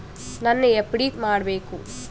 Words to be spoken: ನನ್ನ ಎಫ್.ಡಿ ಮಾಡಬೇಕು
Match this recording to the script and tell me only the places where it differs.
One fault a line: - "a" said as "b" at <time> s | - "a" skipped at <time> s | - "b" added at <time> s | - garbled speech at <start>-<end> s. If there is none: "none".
none